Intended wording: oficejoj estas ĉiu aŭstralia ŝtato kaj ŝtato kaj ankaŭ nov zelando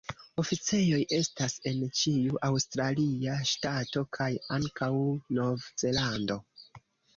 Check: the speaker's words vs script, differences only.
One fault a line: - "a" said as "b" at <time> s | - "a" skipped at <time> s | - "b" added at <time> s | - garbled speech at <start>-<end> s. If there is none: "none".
- "en" added at 1.7 s
- "ŝtato kaj" skipped at 4.3 s